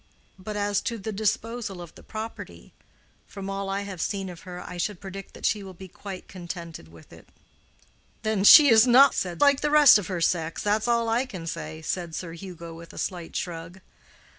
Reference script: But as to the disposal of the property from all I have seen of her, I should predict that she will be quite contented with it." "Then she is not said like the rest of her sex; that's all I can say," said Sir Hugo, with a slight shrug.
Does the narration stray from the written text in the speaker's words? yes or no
no